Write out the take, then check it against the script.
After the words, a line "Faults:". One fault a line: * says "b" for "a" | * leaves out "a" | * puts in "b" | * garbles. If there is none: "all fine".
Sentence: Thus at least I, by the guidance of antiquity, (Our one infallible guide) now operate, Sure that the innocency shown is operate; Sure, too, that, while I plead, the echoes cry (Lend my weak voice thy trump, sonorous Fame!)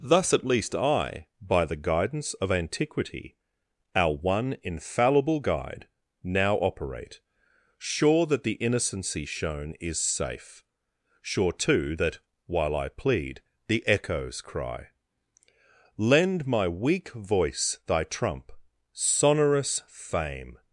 Thus at least I, by the guidance of antiquity, (Our one infallible guide) now operate, Sure that the innocency shown is safe; Sure, too, that, while I plead, the echoes cry (Lend my weak voice thy trump, sonorous Fame!)
Faults:
* says "safe" for "operate"